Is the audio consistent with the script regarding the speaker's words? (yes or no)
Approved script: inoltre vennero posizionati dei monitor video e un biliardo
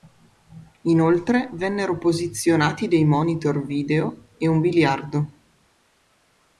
yes